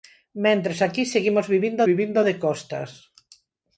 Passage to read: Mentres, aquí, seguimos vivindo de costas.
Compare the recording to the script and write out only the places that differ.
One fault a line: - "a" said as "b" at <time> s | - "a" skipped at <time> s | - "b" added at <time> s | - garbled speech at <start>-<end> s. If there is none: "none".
- "vivindo" added at 1.9 s